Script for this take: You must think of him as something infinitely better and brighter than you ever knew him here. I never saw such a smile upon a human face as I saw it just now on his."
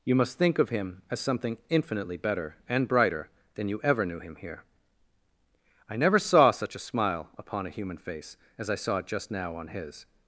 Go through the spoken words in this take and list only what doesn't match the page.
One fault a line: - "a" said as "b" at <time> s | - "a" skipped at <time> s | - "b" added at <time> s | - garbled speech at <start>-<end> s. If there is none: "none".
none